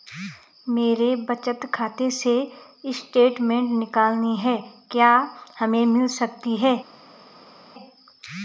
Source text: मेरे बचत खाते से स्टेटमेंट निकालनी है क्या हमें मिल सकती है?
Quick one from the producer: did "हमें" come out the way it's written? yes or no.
yes